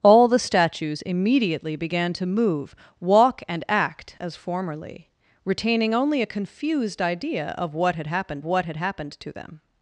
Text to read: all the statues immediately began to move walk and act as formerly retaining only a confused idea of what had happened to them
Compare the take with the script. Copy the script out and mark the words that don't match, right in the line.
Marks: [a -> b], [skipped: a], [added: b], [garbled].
all the statues immediately began to move walk and act as formerly retaining only a confused idea of what had happened [added: what had happened] to them